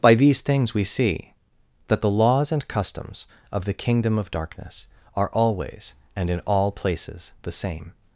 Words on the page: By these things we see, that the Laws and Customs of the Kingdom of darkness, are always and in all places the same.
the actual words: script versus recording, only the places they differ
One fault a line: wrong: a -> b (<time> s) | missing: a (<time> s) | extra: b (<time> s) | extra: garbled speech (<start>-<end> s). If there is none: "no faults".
no faults